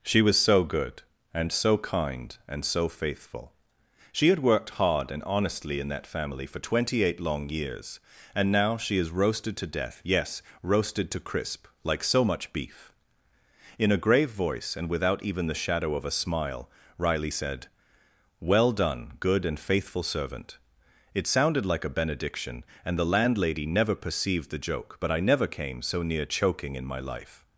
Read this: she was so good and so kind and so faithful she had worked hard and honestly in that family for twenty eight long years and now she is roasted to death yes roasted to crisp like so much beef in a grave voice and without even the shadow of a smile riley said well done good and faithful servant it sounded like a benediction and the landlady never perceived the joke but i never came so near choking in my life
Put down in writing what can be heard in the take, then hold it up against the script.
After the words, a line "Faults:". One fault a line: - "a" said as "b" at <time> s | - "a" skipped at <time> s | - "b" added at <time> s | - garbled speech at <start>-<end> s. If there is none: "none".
she was so good and so kind and so faithful she had worked hard and honestly in that family for twenty eight long years and now she is roasted to death yes roasted to crisp like so much beef in a grave voice and without even the shadow of a smile riley said well done good and faithful servant it sounded like a benediction and the landlady never perceived the joke but i never came so near choking in my life
Faults:
none